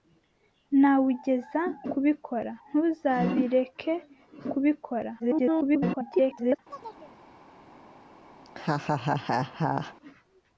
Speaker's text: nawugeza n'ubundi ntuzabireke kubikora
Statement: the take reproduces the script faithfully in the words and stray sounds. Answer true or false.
false